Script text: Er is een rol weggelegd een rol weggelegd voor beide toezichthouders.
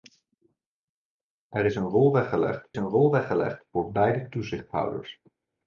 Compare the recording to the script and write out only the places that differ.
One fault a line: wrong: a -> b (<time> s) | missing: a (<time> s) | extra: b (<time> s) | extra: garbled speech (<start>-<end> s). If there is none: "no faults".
no faults